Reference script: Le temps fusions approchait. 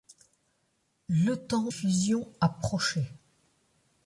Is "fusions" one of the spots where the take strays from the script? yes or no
no